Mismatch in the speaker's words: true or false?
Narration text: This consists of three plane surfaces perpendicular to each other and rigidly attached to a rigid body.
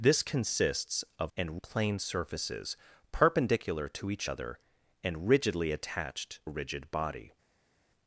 true